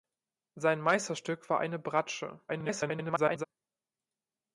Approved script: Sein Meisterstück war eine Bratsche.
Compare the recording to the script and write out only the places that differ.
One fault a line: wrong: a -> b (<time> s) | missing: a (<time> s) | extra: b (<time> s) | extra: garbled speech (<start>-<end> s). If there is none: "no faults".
extra: garbled speech (2.5-3.4 s)